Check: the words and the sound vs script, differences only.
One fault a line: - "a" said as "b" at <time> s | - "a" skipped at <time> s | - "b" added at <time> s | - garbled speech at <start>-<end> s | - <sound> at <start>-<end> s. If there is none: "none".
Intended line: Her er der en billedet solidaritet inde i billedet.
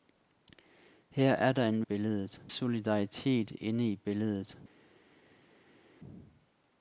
none